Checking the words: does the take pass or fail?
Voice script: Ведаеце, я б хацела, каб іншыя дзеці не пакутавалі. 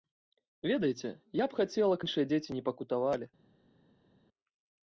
fail